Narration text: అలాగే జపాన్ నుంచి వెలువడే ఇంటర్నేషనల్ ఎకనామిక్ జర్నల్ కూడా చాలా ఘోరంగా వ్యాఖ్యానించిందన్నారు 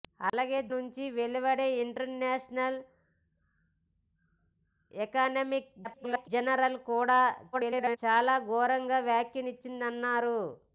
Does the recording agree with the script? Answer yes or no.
no